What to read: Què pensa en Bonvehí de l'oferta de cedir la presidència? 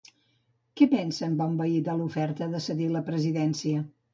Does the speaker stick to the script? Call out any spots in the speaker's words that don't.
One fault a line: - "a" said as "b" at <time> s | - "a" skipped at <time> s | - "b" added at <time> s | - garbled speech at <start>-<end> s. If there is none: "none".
none